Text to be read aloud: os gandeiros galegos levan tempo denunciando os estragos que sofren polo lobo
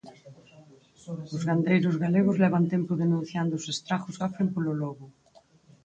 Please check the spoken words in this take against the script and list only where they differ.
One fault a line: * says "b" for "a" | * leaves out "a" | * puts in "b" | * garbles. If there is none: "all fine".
* leaves out "que"